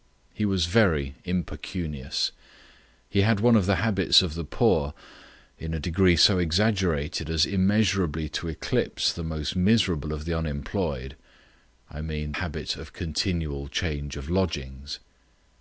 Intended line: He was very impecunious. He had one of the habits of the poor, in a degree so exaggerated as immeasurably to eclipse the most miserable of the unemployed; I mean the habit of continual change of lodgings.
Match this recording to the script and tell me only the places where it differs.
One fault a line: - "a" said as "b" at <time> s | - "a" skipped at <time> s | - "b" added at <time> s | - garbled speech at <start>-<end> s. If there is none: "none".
- "the" skipped at 12.3 s